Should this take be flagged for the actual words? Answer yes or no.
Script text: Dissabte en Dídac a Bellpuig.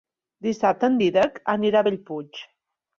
yes